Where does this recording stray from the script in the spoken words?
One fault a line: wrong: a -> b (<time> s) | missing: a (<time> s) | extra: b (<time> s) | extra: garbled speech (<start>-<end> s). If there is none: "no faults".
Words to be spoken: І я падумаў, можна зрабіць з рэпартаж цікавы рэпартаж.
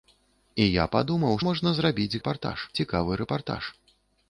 no faults